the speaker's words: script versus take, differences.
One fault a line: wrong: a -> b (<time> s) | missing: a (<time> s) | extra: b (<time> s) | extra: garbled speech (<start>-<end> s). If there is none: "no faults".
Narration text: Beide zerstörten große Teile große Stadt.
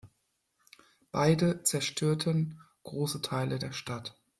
wrong: große -> der (3.6 s)